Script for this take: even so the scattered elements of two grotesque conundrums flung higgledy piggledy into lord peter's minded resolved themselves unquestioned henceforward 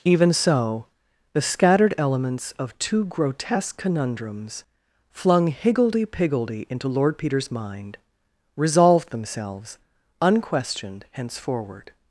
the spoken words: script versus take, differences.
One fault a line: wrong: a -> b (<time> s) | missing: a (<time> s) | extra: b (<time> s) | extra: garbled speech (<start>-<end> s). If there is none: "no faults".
wrong: minded -> mind (7.5 s)